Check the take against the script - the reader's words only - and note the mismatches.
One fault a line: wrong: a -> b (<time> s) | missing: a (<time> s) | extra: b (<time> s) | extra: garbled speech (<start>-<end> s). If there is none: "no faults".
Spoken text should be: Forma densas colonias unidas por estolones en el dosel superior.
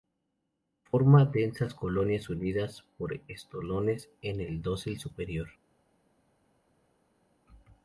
no faults